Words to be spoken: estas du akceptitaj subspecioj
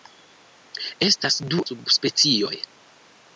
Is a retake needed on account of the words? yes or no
yes